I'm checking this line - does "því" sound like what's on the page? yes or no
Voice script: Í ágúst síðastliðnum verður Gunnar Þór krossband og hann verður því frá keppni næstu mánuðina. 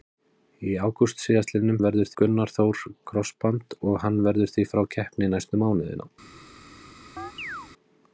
yes